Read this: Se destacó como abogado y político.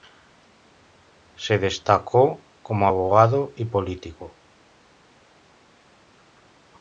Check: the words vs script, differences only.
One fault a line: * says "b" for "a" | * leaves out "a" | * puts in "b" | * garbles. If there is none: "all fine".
all fine